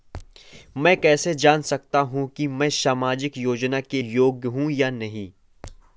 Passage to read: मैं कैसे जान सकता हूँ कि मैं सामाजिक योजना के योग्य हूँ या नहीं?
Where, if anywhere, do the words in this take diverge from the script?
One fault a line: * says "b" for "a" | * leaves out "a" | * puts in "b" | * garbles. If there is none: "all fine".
all fine